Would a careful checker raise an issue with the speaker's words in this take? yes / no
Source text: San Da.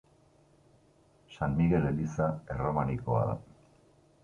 yes